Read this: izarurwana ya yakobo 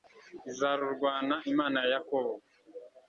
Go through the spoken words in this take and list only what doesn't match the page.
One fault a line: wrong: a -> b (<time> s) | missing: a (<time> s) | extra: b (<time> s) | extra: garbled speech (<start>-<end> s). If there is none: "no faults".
extra: imana (1.5 s)